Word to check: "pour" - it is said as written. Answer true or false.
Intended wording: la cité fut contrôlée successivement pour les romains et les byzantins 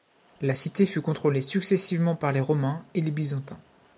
false